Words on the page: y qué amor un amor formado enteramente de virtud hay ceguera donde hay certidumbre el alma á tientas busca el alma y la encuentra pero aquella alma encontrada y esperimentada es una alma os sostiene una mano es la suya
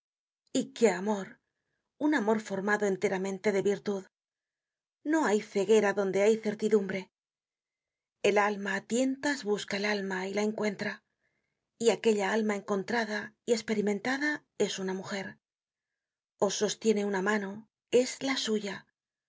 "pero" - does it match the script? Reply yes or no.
no